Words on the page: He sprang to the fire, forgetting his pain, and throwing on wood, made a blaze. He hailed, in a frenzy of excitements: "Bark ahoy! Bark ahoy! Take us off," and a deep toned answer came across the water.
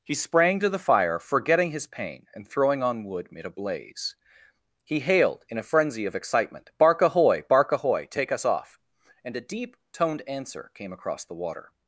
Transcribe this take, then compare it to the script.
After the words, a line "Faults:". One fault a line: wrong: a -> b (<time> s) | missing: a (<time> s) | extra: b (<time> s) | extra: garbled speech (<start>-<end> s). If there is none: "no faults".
He sprang to the fire, forgetting his pain, and throwing on wood, made a blaze. He hailed, in a frenzy of excitement: "Bark ahoy! Bark ahoy! Take us off," and a deep toned answer came across the water.
Faults:
wrong: excitements -> excitement (6.1 s)